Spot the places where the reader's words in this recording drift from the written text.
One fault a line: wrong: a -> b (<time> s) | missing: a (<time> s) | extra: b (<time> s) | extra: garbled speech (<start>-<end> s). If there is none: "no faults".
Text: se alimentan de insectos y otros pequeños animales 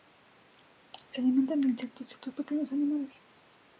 no faults